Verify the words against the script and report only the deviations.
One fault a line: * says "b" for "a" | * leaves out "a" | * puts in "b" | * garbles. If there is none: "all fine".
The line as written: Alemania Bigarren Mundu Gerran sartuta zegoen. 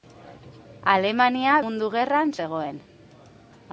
* leaves out "Bigarren"
* leaves out "sartuta"